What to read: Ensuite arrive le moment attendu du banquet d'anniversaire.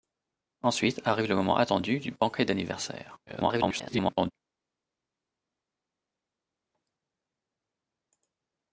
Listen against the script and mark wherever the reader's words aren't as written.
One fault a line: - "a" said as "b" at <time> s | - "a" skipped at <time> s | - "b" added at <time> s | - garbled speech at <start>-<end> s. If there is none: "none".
- garbled speech at 3.3-4.3 s